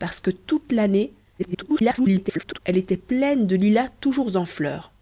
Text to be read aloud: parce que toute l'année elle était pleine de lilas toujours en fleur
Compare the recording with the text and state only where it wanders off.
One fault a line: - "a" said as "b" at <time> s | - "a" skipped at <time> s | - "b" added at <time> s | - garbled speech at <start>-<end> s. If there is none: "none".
- garbled speech at 1.4-2.6 s